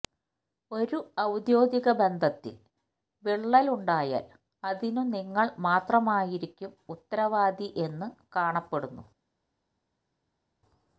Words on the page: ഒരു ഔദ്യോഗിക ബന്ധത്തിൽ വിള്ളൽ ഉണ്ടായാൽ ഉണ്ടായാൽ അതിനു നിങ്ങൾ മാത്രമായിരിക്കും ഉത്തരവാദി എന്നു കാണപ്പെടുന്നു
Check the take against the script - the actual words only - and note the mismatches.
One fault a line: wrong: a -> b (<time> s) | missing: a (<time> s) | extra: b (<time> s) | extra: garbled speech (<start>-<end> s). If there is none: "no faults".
missing: ഉണ്ടായാൽ (4.2 s)